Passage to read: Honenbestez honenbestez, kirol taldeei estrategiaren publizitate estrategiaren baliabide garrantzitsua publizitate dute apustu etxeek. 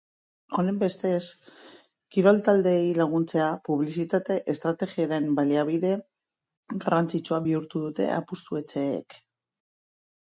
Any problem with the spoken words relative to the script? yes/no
yes